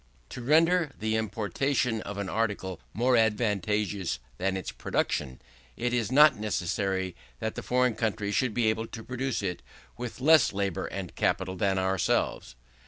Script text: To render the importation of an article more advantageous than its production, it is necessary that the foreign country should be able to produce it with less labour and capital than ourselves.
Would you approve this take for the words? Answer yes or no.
no